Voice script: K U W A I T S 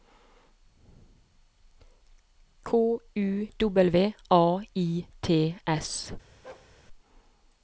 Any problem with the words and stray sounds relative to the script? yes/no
yes